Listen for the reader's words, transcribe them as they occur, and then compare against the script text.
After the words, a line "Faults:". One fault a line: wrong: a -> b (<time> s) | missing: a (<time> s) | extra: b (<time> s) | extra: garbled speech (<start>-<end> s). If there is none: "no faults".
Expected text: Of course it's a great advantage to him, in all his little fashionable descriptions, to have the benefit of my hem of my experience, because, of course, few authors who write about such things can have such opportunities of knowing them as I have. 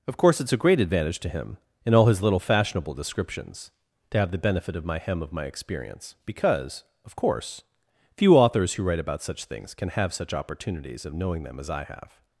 Of course it's a great advantage to him, in all his little fashionable descriptions, to have the benefit of my hem of my experience, because, of course, few authors who write about such things can have such opportunities of knowing them as I have.
Faults:
no faults